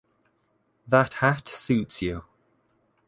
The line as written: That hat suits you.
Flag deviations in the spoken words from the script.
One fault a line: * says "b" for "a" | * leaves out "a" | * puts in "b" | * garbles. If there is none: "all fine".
all fine